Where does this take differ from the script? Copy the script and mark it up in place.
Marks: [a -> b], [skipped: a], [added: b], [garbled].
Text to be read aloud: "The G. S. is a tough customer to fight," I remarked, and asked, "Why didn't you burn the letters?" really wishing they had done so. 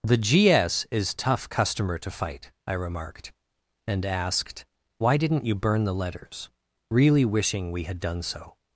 "The G. S. is [skipped: a] tough customer to fight," I remarked, and asked, "Why didn't you burn the letters?" really wishing [they -> we] had done so.